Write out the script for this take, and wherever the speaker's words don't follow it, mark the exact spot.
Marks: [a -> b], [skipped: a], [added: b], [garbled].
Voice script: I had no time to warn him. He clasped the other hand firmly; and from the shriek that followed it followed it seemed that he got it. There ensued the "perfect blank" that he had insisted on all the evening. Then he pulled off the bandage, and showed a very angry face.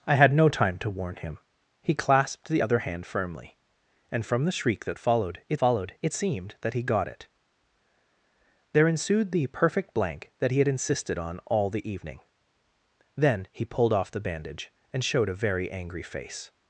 I had no time to warn him. He clasped the other hand firmly; and from the shriek that followed it followed it seemed that he got it. There ensued the "perfect blank" that he had insisted on all the evening. Then he pulled off the bandage, and showed a very angry face.